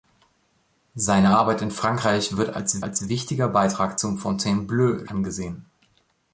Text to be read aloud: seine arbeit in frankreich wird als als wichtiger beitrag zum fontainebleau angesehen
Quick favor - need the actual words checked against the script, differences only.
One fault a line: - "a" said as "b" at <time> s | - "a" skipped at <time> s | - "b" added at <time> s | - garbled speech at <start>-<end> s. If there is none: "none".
none